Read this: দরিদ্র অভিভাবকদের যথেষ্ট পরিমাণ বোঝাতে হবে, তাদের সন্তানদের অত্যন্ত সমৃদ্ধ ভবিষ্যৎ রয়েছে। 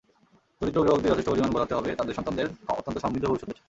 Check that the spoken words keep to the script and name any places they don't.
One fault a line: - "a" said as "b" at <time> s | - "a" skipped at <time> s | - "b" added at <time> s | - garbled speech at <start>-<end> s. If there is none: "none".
none